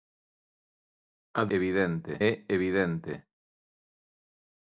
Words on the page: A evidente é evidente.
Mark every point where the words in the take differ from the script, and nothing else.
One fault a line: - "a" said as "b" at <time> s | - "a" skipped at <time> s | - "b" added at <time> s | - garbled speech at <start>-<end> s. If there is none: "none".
none